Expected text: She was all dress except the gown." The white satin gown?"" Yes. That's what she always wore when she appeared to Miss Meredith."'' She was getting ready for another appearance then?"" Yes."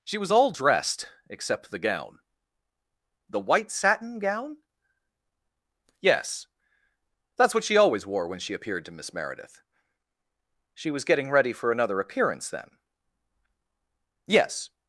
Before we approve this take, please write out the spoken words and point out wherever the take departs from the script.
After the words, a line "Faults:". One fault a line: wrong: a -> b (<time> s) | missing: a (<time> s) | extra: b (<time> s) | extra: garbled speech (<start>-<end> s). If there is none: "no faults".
She was all dressed except the gown." The white satin gown?"" Yes. That's what she always wore when she appeared to Miss Meredith."'' She was getting ready for another appearance then?"" Yes."
Faults:
wrong: dress -> dressed (0.5 s)